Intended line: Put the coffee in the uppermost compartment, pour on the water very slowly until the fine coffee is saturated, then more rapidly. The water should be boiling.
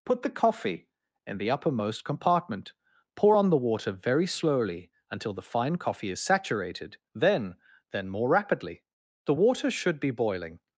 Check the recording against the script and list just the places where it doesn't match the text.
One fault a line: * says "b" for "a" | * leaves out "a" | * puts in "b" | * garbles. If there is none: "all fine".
* puts in "then"